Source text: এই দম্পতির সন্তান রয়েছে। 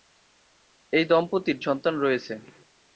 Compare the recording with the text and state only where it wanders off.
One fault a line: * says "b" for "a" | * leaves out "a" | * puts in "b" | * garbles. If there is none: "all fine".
all fine